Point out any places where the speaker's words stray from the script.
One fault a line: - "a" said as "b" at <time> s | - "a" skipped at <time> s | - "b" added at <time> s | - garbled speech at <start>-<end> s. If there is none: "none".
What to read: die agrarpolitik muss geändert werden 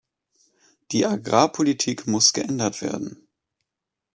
none